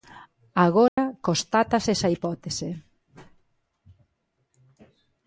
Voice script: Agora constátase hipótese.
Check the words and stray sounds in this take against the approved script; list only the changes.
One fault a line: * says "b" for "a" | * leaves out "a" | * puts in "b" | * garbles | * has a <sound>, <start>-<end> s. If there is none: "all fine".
* has a dropout, 0.9-1.0 s
* puts in "esa"